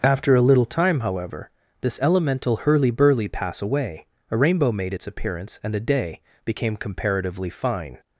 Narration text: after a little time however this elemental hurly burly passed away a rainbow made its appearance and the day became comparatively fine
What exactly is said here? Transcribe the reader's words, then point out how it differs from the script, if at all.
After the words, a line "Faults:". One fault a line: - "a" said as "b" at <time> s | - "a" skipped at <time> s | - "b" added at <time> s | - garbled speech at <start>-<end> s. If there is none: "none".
after a little time however this elemental hurly burly pass away a rainbow made its appearance and a day became comparatively fine
Faults:
- "passed" said as "pass" at 3.3 s
- "the" said as "a" at 5.7 s